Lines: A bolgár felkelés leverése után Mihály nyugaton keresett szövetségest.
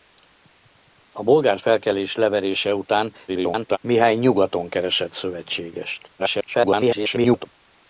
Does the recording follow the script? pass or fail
fail